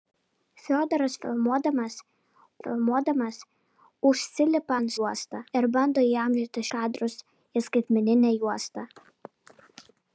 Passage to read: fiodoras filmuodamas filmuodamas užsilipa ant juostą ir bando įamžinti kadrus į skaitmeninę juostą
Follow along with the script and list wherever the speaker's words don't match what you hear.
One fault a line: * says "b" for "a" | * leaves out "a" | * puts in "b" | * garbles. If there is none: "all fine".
all fine